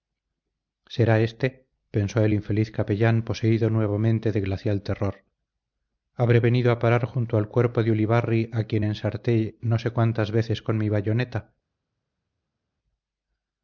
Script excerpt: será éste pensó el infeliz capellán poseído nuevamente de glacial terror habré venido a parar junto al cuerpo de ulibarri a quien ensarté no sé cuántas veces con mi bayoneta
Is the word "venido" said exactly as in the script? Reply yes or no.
yes